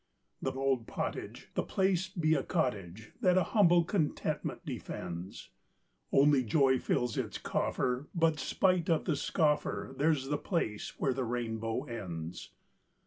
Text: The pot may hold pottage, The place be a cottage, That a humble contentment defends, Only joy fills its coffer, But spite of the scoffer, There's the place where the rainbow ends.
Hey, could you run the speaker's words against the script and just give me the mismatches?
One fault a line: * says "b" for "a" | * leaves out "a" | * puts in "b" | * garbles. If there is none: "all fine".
* leaves out "pot may"